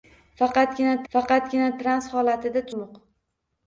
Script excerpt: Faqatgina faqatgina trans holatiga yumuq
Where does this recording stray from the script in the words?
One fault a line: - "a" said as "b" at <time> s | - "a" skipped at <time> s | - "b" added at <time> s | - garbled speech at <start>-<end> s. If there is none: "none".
none